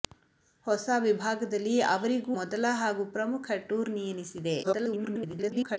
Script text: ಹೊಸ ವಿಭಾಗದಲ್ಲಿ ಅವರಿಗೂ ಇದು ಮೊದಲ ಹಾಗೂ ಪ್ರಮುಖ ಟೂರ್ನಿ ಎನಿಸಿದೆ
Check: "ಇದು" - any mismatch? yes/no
yes